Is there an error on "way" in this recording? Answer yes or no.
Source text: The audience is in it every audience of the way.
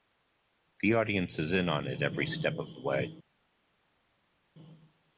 no